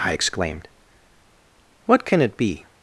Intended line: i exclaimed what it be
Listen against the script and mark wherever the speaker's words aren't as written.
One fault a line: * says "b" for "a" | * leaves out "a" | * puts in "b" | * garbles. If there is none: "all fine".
* puts in "can"